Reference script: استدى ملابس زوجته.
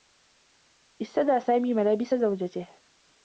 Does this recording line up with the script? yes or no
no